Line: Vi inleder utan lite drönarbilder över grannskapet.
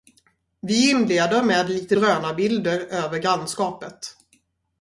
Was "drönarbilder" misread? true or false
false